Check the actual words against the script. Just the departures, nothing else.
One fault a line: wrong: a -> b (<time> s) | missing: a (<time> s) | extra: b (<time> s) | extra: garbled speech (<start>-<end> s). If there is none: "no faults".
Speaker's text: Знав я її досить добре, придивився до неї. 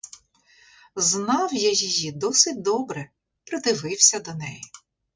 no faults